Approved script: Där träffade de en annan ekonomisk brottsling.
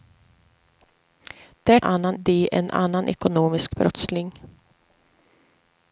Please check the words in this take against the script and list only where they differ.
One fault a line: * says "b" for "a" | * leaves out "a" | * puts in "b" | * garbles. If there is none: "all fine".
* says "annan" for "träffade"